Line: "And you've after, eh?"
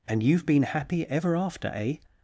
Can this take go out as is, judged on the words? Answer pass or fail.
fail